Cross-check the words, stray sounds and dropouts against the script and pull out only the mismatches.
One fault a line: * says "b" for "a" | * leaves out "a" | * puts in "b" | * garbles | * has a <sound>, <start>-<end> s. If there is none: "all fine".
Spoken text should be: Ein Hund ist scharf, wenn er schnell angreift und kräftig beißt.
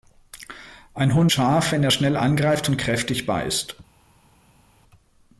* leaves out "ist"